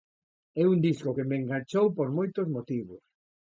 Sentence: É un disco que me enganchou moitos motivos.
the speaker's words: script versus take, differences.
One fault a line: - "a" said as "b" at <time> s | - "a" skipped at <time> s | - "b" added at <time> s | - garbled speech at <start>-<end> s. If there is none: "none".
- "por" added at 2.0 s